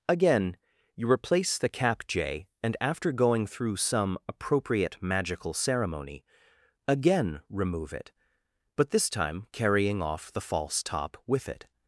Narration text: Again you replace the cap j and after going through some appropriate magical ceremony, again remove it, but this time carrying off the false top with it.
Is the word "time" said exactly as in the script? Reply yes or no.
yes